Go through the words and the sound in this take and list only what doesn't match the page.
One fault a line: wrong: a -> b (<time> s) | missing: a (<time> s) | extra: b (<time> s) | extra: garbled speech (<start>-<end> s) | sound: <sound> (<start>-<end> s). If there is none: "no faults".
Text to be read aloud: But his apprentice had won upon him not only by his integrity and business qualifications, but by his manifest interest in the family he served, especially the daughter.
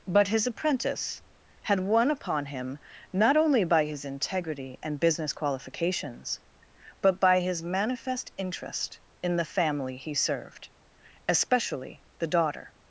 no faults